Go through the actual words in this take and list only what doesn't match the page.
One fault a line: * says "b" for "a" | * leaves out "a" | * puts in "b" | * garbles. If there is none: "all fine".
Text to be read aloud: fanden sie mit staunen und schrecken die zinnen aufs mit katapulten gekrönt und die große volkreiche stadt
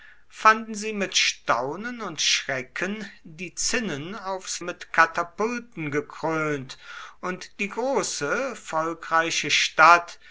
all fine